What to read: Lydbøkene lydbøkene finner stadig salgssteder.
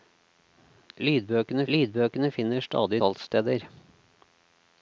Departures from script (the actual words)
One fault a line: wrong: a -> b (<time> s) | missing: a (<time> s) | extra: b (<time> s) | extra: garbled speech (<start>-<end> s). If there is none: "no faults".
no faults